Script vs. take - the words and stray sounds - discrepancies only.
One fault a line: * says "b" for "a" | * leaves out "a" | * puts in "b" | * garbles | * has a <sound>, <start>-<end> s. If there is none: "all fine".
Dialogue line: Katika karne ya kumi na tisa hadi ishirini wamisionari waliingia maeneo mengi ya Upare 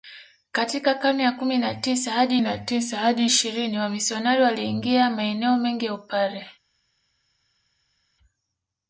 * puts in "na tisa hadi"